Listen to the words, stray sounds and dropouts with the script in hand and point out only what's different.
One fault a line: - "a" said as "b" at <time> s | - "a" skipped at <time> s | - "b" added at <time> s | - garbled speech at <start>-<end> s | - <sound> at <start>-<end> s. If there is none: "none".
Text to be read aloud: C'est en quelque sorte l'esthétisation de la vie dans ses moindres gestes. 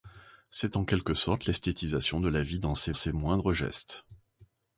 - "ses" added at 2.9 s